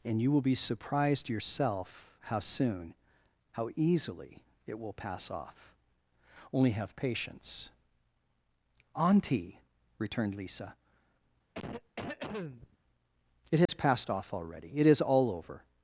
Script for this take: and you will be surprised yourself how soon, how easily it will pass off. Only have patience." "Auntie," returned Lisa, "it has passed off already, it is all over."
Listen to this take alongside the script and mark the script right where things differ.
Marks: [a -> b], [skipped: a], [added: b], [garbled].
and you will be surprised yourself how soon, how easily it will pass off. Only have patience." "Auntie," returned Lisa, "it has passed off already, it is all over."